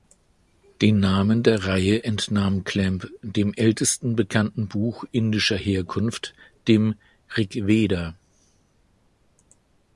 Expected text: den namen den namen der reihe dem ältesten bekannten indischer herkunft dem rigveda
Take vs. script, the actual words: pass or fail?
fail